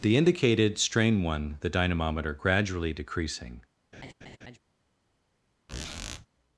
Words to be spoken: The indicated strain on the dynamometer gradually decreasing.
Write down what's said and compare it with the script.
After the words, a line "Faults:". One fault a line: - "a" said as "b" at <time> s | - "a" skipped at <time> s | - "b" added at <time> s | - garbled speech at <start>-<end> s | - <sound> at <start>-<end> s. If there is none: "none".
The indicated strain one the dynamometer gradually decreasing.
Faults:
- "on" said as "one" at 1.2 s
- laugh at 3.9-4.6 s
- squeak at 5.7-6.3 s